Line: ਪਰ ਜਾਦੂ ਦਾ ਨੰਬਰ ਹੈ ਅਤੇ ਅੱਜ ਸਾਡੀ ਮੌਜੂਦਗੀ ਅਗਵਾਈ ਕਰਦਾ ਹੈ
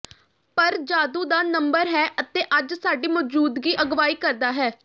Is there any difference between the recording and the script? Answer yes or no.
no